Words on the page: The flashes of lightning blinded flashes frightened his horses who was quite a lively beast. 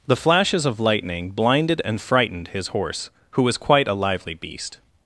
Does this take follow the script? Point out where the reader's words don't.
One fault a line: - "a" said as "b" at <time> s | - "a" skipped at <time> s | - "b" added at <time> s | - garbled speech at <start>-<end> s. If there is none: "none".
- "flashes" said as "and" at 1.9 s
- "horses" said as "horse" at 2.7 s